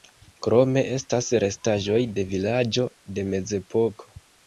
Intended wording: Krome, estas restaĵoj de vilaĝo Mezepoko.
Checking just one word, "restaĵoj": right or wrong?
right